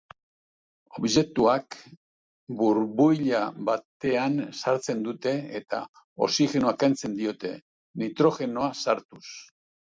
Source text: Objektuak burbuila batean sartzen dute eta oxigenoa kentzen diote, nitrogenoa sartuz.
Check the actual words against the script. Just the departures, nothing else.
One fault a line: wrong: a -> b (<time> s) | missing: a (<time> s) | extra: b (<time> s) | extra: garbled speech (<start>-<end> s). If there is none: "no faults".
no faults